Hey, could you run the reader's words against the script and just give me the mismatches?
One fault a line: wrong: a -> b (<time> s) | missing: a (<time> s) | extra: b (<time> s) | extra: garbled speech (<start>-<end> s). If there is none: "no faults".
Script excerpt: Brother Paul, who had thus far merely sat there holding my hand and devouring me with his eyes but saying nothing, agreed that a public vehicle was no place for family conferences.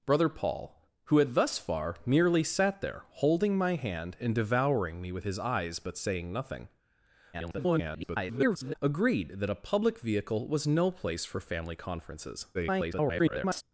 extra: garbled speech (7.3-8.7 s)
extra: garbled speech (12.5-13.6 s)